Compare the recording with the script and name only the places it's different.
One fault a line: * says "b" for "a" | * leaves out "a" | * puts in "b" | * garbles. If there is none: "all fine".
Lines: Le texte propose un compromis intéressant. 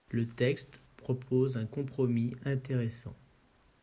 all fine